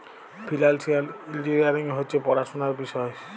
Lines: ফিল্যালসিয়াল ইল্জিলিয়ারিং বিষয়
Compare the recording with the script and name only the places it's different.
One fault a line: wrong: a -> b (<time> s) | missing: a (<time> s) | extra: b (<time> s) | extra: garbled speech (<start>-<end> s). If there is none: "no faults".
extra: হছে পড়াশুলার (2.0 s)